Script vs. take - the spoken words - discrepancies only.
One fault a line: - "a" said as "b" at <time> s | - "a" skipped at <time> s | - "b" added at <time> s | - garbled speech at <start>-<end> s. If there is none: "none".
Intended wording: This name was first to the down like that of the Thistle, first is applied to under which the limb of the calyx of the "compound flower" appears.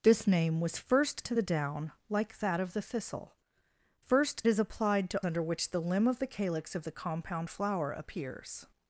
none